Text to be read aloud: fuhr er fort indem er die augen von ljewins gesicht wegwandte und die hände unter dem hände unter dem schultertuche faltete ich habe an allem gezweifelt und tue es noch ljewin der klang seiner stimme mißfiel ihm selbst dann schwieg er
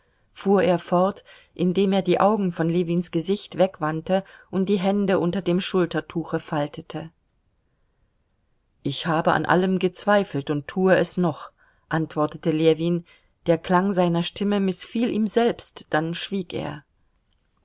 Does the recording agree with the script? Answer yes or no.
no